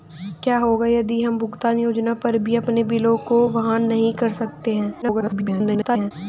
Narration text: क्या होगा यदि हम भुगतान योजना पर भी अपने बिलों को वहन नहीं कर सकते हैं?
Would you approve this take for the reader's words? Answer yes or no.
no